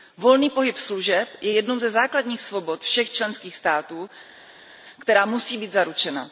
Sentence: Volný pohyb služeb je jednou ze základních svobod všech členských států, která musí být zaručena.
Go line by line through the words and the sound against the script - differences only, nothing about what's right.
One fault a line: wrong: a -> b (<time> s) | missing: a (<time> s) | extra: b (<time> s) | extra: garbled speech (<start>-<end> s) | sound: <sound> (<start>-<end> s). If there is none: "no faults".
no faults